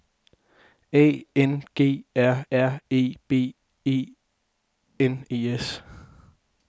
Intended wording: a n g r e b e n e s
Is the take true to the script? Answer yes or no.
no